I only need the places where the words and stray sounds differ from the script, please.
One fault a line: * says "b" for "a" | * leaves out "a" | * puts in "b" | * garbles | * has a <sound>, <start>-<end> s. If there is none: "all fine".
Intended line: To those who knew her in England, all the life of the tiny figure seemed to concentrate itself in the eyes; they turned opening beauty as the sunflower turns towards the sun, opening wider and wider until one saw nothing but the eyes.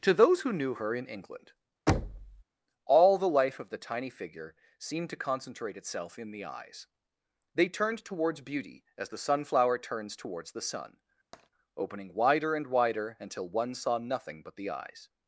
* has a thud, 1.9-2.4 s
* says "towards" for "opening"
* has a tap, 11.3-11.5 s